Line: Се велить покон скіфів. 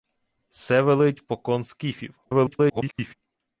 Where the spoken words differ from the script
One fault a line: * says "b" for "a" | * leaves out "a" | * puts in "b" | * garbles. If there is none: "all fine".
* garbles